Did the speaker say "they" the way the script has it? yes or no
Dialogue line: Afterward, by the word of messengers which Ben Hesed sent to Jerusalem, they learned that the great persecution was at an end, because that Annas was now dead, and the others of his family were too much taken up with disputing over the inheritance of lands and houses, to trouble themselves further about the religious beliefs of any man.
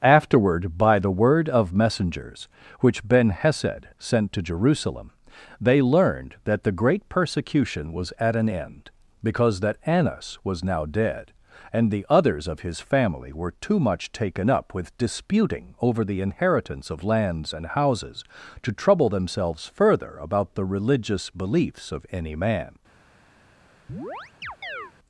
yes